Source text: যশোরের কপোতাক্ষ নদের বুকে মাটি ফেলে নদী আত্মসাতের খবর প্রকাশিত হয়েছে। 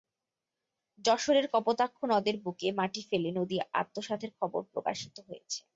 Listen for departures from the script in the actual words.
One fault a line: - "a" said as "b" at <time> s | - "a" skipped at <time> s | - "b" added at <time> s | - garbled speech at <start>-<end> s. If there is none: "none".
none